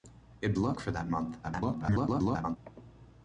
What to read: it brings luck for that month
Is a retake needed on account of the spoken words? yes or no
yes